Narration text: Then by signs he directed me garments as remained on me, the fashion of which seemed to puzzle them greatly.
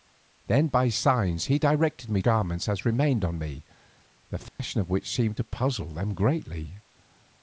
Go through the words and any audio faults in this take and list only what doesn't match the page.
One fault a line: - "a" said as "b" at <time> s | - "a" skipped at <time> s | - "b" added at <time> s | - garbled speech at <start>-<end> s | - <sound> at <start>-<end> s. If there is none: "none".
- dropout at 4.5-4.6 s